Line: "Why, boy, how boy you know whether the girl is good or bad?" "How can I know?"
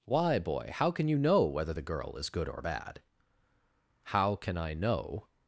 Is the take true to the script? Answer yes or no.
no